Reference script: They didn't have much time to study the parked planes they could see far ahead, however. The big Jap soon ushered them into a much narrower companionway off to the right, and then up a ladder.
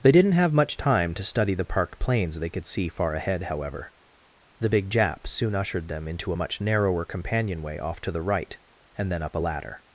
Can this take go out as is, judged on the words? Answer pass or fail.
pass